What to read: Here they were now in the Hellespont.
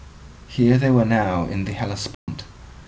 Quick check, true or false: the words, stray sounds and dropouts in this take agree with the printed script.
false